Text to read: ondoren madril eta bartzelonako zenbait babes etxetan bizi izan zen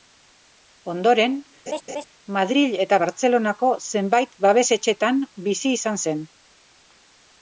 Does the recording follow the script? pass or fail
pass